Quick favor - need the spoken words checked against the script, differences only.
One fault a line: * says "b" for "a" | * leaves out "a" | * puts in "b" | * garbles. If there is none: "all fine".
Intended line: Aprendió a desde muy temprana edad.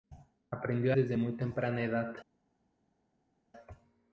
all fine